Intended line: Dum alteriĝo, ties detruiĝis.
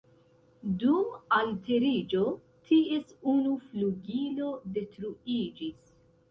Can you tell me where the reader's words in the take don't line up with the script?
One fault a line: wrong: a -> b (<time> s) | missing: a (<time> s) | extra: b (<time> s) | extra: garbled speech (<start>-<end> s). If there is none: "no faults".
extra: unu flugilo (3.3 s)